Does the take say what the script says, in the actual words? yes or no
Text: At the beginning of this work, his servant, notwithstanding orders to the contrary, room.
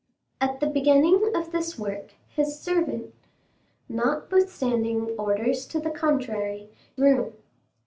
yes